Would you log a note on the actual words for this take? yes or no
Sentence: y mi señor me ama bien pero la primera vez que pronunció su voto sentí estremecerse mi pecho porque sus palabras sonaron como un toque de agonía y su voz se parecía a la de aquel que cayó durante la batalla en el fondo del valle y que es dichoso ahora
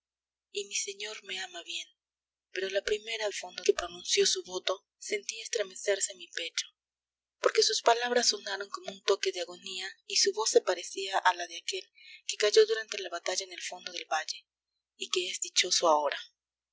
yes